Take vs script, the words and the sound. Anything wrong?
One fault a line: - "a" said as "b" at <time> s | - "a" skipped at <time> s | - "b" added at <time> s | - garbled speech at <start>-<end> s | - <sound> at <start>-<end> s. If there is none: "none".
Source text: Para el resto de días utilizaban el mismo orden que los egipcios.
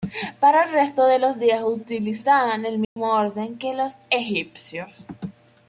- "los" added at 1.2 s
- dropout at 2.8-3.0 s